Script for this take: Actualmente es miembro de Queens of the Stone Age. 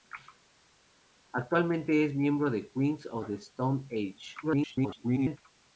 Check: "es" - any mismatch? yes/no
no